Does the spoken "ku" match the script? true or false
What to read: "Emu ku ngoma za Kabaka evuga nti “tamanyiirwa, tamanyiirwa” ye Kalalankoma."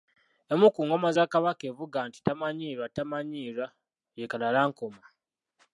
true